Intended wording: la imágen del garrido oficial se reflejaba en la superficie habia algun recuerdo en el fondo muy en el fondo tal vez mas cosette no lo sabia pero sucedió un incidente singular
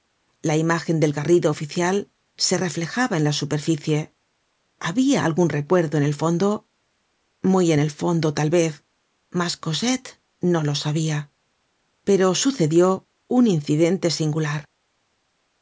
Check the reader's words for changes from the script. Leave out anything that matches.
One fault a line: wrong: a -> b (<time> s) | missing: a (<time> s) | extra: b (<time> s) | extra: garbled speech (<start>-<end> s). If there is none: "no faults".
no faults